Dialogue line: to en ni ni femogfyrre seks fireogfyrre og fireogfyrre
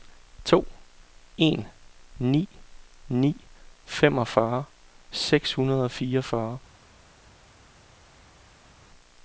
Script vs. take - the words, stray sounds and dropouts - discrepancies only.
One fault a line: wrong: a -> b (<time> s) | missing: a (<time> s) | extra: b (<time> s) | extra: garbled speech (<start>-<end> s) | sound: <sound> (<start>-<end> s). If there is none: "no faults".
wrong: fireogfyrre -> hundrede (5.5 s)